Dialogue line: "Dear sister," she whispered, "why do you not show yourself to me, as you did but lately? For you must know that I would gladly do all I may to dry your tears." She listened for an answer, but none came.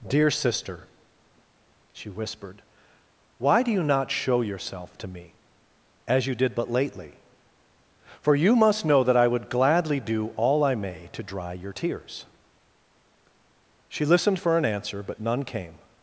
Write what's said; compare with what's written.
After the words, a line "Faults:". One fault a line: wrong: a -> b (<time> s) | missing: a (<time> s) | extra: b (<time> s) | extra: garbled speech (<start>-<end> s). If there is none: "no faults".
"Dear sister," she whispered, "why do you not show yourself to me, as you did but lately? For you must know that I would gladly do all I may to dry your tears." She listened for an answer, but none came.
Faults:
no faults